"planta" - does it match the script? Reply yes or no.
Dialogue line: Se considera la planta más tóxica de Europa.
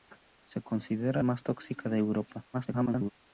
no